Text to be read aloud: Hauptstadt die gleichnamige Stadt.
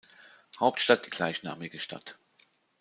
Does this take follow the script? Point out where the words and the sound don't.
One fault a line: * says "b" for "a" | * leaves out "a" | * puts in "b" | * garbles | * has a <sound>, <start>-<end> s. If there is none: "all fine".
all fine